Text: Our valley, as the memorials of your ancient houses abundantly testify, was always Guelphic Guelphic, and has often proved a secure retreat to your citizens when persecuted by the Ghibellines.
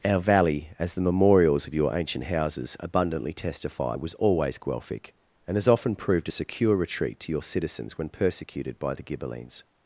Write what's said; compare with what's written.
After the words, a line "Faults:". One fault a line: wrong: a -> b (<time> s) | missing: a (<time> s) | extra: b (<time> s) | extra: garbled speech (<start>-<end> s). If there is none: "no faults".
Our valley, as the memorials of your ancient houses abundantly testify, was always Guelphic, and has often proved a secure retreat to your citizens when persecuted by the Ghibellines.
Faults:
missing: Guelphic (5.1 s)